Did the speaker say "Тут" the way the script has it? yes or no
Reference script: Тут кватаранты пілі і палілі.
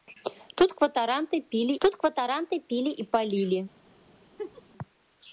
yes